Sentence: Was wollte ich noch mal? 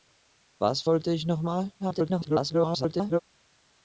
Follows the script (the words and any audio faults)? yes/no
no